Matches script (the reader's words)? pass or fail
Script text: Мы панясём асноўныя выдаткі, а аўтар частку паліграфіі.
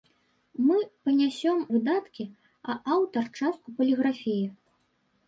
fail